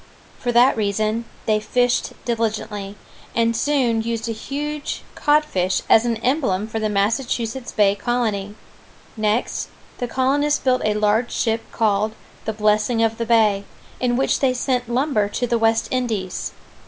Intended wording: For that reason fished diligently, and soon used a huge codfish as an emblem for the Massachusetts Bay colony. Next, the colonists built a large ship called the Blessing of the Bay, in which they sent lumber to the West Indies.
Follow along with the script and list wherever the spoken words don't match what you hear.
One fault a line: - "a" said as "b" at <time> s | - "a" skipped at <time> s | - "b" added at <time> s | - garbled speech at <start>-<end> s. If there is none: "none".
- "they" added at 1.5 s